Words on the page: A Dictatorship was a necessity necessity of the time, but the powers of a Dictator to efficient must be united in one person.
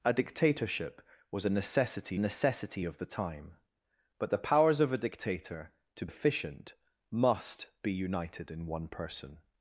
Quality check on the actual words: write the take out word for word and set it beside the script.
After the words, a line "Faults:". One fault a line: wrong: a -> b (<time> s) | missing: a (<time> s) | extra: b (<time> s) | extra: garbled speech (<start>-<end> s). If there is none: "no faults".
A Dictatorship was a necessity necessity of the time, but the powers of a Dictator to efficient must be united in one person.
Faults:
no faults